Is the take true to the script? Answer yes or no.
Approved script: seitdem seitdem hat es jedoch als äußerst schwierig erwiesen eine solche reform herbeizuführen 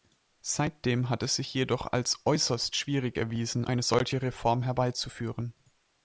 no